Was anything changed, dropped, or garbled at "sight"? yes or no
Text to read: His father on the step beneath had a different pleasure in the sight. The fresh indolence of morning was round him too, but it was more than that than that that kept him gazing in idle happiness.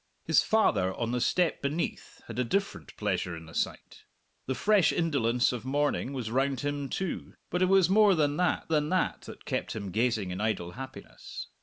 no